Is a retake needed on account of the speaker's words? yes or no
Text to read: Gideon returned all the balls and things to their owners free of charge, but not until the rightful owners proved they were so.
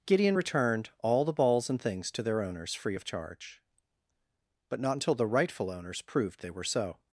no